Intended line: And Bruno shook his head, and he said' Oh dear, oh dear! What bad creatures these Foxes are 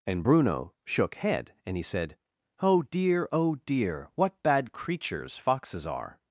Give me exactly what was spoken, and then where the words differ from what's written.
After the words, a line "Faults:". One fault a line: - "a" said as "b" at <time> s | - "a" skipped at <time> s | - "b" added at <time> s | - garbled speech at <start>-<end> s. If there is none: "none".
And Bruno shook head, and he said' Oh dear, oh dear! What bad creatures Foxes are
Faults:
- "his" skipped at 1.1 s
- "these" skipped at 5.4 s